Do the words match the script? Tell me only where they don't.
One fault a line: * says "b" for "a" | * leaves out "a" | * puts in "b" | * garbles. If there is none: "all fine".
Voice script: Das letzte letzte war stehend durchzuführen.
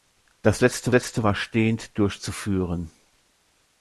all fine